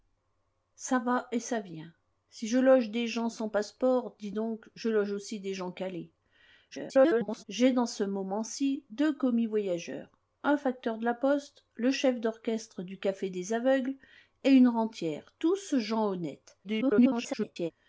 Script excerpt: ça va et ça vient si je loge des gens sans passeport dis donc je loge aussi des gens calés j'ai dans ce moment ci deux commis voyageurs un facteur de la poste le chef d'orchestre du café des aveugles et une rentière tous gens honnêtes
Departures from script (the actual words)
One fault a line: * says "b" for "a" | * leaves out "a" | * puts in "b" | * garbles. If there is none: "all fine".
* garbles
* garbles